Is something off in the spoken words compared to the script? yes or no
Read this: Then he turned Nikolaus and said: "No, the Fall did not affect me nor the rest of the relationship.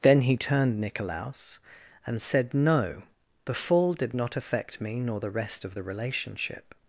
no